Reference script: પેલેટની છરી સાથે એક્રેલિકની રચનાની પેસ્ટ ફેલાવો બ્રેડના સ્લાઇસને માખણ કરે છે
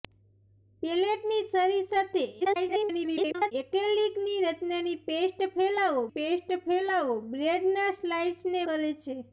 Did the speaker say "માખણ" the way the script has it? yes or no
no